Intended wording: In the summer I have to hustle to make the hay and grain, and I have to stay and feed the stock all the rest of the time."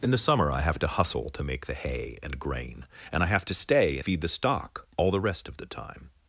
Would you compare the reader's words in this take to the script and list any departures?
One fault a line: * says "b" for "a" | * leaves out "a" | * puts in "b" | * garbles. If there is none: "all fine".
* leaves out "and"